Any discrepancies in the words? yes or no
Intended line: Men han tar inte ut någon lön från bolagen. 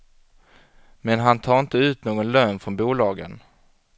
no